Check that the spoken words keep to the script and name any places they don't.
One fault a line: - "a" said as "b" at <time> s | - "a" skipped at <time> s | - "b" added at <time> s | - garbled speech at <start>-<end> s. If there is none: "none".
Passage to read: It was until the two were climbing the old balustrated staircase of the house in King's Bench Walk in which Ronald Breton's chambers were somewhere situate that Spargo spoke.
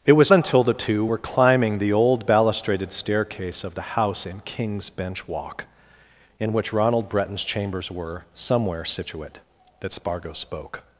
none